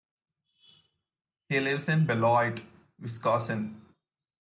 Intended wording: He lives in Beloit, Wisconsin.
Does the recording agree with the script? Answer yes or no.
yes